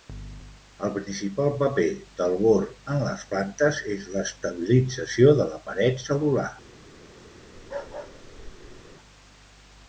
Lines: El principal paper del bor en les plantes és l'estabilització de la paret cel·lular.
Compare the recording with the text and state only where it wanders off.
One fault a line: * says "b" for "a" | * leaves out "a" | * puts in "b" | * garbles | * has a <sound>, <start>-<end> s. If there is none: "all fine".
* has a bark, 7.6-9.0 s